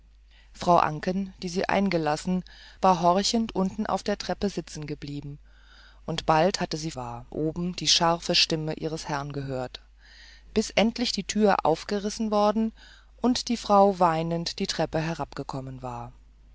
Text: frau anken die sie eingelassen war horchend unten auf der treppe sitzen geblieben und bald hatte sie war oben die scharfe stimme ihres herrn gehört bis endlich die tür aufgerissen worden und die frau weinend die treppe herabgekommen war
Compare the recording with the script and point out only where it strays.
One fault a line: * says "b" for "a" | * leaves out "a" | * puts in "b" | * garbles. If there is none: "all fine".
all fine